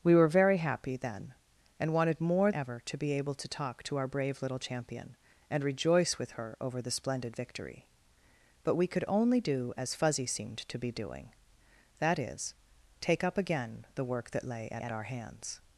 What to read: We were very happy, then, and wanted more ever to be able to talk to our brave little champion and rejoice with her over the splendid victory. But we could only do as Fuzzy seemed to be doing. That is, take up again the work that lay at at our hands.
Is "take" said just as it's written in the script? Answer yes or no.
yes